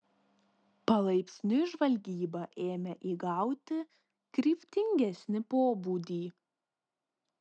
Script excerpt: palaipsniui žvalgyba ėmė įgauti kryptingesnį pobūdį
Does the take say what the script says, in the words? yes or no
yes